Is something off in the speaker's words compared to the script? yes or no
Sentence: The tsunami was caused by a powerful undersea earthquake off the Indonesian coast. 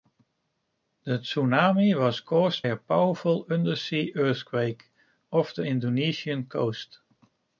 yes